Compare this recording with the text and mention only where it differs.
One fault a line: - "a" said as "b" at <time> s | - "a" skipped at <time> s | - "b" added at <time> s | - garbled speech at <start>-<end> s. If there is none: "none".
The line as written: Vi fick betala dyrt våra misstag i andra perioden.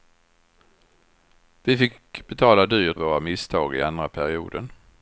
none